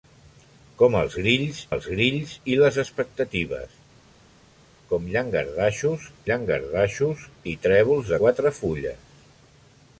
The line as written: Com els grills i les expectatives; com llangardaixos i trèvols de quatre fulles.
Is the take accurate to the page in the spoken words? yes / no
no